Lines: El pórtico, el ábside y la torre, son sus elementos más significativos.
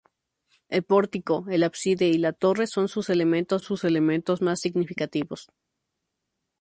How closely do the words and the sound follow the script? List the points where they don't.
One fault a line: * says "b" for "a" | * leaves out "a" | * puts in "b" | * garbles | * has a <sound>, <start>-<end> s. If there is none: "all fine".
* puts in "sus elementos"